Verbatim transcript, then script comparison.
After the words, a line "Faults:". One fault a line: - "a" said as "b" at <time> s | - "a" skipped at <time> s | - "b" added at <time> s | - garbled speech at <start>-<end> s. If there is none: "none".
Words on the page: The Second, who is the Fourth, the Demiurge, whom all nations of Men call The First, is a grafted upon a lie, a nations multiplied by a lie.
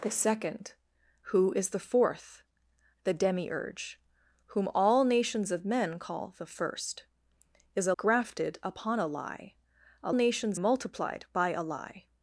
The Second, who is the Fourth, the Demiurge, whom all nations of Men call The First, is a grafted upon a lie, a nations multiplied by a lie.
Faults:
none